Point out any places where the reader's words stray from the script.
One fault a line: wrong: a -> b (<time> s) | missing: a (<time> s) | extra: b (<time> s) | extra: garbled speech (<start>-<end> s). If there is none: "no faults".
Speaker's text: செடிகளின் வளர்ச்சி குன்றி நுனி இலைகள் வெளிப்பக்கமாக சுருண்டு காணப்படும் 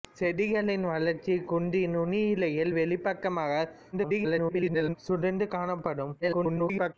extra: garbled speech (3.9-5.0 s)
extra: garbled speech (6.2-6.9 s)